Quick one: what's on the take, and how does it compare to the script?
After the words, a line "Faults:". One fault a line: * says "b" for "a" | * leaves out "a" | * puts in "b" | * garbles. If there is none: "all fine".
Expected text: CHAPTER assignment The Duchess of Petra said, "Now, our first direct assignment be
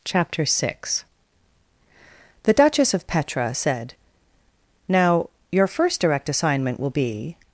CHAPTER six The Duchess of Petra said, "Now, your first direct assignment will be
Faults:
* says "six" for "assignment"
* says "your" for "our"
* puts in "will"